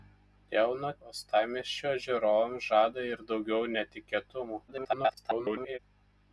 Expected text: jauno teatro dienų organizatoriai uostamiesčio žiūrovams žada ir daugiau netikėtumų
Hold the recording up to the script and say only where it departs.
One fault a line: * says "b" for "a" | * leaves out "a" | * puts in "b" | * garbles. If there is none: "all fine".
* leaves out "teatro dienų organizatoriai"
* garbles